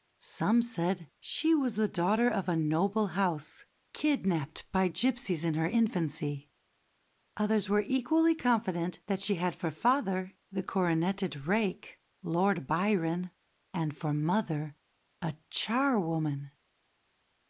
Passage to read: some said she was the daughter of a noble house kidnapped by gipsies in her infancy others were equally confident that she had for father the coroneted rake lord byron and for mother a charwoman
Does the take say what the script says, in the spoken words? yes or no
yes